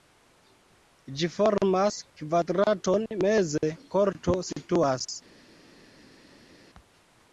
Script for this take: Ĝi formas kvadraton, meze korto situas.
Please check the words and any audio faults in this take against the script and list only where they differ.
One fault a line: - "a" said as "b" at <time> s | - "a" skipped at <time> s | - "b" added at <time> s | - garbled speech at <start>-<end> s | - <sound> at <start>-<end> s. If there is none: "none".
none